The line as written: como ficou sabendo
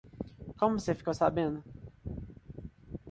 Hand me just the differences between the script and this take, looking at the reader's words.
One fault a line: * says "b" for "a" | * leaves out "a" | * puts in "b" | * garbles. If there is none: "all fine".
* puts in "você"